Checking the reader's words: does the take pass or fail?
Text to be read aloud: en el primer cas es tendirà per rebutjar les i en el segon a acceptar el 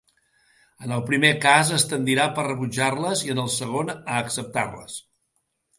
fail